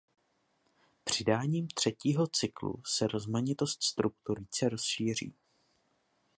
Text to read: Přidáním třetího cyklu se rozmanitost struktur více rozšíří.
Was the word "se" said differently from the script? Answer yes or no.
no